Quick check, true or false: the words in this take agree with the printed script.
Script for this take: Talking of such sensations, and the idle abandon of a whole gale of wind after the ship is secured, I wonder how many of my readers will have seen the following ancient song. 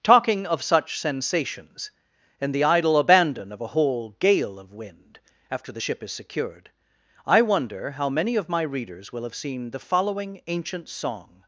true